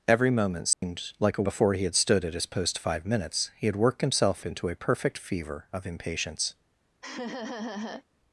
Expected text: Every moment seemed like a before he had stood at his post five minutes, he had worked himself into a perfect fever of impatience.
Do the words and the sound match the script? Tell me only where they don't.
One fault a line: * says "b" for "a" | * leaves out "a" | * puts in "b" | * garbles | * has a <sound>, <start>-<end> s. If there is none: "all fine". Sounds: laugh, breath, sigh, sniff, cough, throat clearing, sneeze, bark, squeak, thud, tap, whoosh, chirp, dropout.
* has a dropout, 0.7-0.8 s
* has a laugh, 7.0-8.0 s